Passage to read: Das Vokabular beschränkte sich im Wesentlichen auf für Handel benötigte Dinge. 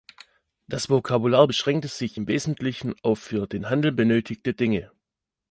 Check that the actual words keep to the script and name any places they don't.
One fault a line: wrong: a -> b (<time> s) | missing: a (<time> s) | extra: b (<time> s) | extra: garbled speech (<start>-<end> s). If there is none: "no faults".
extra: den (3.5 s)